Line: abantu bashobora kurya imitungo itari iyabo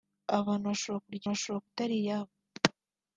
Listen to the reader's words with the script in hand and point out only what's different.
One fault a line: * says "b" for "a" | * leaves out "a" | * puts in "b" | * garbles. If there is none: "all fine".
* says "bashobora" for "imitungo"